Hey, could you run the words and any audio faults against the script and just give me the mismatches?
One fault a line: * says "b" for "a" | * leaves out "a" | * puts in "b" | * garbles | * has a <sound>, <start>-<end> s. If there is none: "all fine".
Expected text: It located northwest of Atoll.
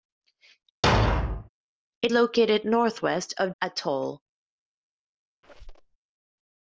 * has a thud, 0.8-1.5 s
* has a squeak, 5.4-6.0 s